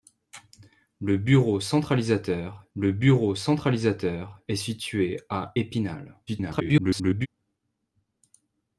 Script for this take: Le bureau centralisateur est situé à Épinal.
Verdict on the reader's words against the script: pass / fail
fail